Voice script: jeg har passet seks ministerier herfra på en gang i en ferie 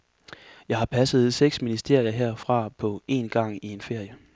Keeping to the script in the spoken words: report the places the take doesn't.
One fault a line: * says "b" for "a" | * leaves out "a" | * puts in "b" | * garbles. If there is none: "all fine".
all fine